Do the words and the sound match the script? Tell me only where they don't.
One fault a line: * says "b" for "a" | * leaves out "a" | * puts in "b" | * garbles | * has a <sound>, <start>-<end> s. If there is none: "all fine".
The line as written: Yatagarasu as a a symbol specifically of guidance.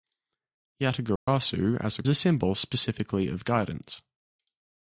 * has a dropout, 1.2-1.3 s